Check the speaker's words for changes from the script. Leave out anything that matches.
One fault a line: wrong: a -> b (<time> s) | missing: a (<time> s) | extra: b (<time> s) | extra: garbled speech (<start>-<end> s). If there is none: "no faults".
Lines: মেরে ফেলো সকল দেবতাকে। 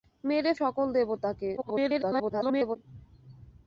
missing: ফেলো (0.5 s)
extra: garbled speech (1.6-2.8 s)